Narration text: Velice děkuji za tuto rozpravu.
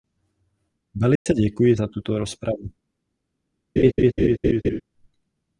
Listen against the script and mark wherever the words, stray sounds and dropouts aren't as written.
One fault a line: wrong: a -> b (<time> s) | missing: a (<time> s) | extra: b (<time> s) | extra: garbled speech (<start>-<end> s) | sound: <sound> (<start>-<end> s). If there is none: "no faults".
sound: dropout (1.2-1.3 s)
sound: laugh (3.8-4.8 s)